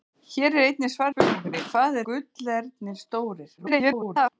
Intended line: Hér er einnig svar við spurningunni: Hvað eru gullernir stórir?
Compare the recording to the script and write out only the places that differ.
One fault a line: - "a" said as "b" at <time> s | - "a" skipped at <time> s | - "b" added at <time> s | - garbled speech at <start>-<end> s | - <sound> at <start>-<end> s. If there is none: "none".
- "við" skipped at 1.1 s
- "eru" skipped at 2.0 s
- garbled speech at 3.6-4.3 s